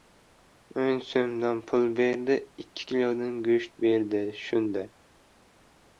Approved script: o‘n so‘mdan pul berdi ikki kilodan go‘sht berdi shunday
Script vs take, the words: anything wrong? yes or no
no